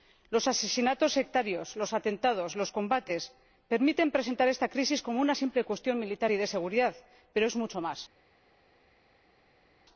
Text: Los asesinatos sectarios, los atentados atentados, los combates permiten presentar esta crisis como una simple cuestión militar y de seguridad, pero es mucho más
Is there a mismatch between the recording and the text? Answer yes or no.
yes